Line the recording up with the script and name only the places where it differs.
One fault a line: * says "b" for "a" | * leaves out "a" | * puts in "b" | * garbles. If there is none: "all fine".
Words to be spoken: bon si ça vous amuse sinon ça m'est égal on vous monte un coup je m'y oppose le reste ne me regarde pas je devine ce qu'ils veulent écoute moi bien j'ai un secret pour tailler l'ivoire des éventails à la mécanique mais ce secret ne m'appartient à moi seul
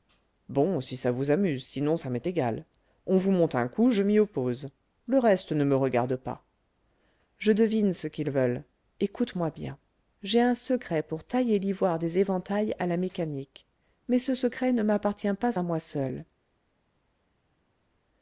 * puts in "pas"